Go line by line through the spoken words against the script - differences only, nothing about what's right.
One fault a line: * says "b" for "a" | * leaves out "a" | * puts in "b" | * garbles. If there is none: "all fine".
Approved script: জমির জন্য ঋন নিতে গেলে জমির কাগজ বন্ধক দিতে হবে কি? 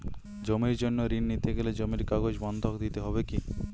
all fine